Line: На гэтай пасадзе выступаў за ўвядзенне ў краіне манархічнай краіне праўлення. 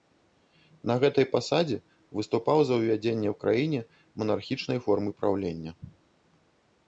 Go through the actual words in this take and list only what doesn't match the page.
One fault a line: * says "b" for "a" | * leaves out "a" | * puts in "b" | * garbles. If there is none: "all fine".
* says "формы" for "краіне"